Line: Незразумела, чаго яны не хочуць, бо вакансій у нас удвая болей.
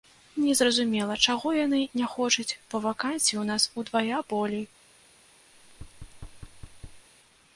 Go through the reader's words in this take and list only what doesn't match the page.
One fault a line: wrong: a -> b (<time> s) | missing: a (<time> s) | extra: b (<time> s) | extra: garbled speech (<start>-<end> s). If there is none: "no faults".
no faults